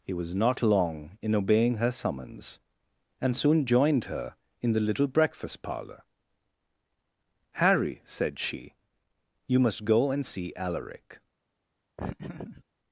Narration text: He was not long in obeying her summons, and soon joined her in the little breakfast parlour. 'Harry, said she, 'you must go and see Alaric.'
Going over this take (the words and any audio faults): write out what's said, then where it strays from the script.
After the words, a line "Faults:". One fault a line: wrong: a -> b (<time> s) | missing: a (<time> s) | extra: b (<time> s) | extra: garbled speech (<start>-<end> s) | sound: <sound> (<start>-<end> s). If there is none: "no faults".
He was not long in obeying her summons, and soon joined her in the little breakfast parlour. 'Harry, said she, 'you must go and see Alaric.'
Faults:
sound: laugh (12.0-12.6 s)